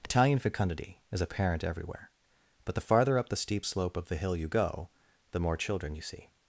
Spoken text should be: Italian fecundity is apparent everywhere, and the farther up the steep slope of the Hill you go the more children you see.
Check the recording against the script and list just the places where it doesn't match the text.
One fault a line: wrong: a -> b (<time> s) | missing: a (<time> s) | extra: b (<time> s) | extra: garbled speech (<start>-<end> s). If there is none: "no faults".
wrong: and -> but (2.6 s)